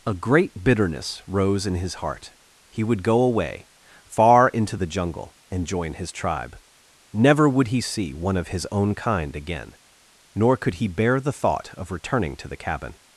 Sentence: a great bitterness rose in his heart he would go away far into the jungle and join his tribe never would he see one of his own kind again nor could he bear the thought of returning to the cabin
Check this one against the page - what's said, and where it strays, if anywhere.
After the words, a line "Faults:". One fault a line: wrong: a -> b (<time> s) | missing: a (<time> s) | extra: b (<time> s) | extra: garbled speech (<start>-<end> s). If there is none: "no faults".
a great bitterness rose in his heart he would go away far into the jungle and join his tribe never would he see one of his own kind again nor could he bear the thought of returning to the cabin
Faults:
no faults